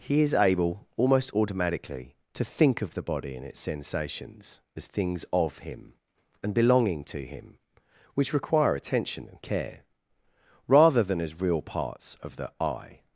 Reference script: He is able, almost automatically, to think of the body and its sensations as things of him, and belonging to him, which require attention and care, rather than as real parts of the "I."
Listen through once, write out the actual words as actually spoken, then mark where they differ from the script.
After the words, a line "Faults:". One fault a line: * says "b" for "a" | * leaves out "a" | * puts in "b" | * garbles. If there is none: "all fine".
He is able, almost automatically, to think of the body and its sensations as things of him, and belonging to him, which require attention and care, rather than as real parts of the "I."
Faults:
all fine